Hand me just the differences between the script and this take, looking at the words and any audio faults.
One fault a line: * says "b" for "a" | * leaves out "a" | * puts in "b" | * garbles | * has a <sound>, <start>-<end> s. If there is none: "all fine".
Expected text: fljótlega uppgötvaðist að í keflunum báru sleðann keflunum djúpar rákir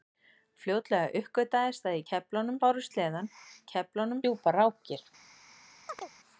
* has a chirp, 5.9-6.1 s